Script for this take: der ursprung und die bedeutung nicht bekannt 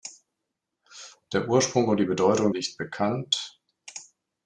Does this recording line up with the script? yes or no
yes